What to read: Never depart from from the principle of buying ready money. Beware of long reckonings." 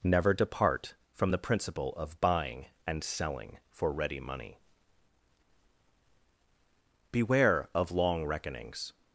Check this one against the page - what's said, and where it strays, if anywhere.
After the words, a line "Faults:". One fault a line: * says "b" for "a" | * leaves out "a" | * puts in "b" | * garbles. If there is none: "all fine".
Never depart from the principle of buying and selling for ready money. Beware of long reckonings."
Faults:
* leaves out "from"
* puts in "and selling for"